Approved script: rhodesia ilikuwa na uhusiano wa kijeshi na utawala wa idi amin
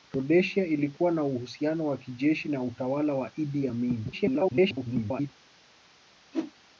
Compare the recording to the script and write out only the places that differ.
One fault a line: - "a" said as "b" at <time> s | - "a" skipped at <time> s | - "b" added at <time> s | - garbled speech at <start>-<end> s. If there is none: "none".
- garbled speech at 4.1-5.3 s